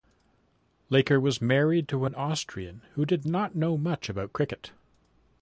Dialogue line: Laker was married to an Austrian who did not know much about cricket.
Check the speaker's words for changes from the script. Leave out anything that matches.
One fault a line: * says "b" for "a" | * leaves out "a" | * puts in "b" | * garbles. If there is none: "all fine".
all fine